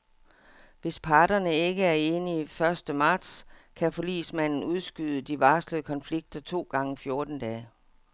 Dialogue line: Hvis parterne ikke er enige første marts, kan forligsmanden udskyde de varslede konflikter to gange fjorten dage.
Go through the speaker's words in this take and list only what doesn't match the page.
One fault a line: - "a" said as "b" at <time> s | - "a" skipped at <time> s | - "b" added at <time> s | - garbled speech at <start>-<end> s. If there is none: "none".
none